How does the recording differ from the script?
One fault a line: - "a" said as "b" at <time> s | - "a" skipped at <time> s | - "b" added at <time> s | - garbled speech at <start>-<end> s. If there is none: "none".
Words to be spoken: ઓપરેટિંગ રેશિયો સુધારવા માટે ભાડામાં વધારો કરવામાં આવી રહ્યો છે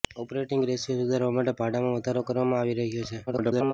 - garbled speech at 3.3-3.7 s